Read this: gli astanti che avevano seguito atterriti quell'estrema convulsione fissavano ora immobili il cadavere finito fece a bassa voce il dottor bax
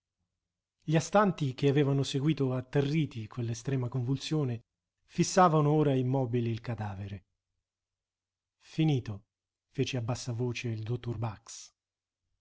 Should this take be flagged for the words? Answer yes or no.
no